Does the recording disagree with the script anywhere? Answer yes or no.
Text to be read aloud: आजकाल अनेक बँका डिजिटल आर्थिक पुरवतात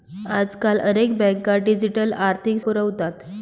no